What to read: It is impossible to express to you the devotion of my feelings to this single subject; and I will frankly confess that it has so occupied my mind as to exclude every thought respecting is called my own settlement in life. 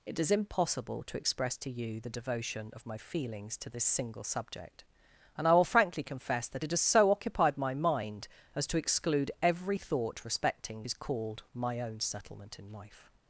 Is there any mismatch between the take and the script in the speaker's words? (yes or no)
no